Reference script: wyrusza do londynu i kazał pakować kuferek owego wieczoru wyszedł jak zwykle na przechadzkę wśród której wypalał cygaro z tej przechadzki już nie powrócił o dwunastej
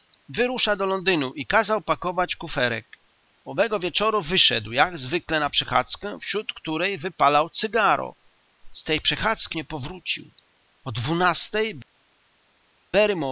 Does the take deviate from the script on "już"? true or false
true